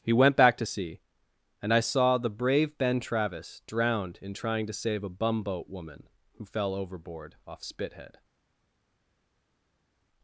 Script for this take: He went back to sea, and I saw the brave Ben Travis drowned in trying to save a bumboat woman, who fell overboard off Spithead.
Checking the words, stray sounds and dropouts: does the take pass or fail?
pass